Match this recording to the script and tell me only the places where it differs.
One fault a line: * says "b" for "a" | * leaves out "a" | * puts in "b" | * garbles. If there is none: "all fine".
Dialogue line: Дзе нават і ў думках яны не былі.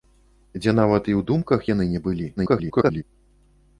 * garbles